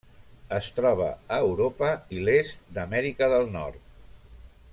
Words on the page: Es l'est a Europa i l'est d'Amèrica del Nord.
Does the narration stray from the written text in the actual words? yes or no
yes